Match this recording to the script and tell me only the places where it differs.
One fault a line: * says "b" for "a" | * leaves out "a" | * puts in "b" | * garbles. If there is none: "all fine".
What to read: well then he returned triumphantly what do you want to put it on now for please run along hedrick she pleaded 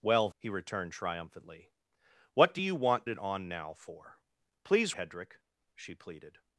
* leaves out "then"
* leaves out "to put"
* leaves out "run along"